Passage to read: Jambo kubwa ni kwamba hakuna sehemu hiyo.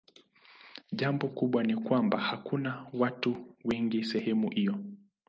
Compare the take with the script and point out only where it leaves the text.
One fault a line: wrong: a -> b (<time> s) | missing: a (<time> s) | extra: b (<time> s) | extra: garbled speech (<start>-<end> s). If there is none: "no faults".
extra: watu wengi (2.9 s)